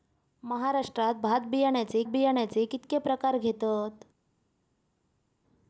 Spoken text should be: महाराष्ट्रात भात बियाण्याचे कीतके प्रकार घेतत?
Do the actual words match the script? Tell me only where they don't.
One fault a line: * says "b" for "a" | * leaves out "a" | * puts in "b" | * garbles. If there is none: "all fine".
* puts in "बियाण्याचे"